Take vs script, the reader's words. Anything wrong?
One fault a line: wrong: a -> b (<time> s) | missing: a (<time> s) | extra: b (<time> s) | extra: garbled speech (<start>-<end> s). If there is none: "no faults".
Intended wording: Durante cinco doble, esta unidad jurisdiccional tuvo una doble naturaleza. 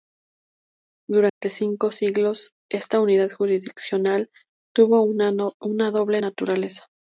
wrong: doble -> siglos (1.9 s)